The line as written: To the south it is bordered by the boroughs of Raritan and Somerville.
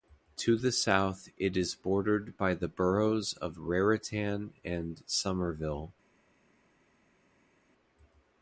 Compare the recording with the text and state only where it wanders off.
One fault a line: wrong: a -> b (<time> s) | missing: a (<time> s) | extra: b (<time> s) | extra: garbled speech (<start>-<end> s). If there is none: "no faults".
no faults